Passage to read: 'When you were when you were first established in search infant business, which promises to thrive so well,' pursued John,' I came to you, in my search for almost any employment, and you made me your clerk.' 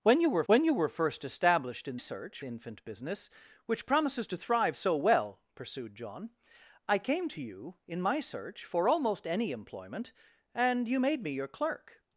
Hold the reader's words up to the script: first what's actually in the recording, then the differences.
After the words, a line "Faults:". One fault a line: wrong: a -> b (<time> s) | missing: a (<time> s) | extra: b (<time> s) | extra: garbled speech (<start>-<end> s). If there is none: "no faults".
'When you were when you were first established in search infant business, which promises to thrive so well,' pursued John,' I came to you, in my search for almost any employment, and you made me your clerk.'
Faults:
no faults